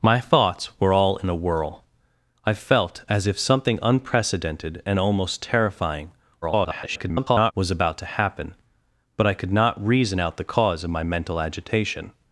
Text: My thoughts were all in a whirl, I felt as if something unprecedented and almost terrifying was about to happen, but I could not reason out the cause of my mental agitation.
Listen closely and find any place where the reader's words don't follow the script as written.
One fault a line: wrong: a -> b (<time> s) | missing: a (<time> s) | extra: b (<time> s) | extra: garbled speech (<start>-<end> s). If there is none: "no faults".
extra: garbled speech (6.4-7.5 s)